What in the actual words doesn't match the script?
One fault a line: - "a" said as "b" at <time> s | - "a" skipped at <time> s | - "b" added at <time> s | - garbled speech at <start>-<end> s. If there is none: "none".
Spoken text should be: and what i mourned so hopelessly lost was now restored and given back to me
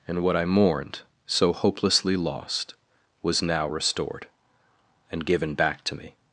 none